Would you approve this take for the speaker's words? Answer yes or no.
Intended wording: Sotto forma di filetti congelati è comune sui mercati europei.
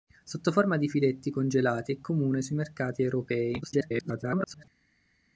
no